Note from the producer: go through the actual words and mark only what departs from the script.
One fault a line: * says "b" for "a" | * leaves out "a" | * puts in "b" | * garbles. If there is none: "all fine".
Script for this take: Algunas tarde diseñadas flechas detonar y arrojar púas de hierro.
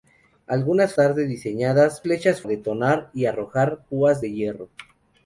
all fine